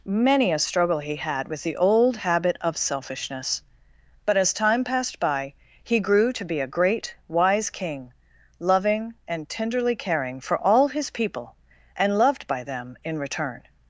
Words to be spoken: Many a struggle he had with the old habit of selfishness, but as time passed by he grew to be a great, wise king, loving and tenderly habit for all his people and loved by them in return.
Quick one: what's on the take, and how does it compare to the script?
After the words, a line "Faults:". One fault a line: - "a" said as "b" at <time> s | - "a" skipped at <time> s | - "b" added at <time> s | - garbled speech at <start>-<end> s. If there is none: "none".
Many a struggle he had with the old habit of selfishness, but as time passed by he grew to be a great, wise king, loving and tenderly caring for all his people and loved by them in return.
Faults:
- "habit" said as "caring" at 10.0 s